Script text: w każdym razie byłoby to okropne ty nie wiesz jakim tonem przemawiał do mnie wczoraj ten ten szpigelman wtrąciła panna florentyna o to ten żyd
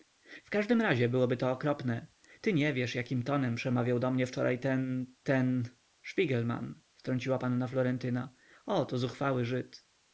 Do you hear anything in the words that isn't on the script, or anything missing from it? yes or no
yes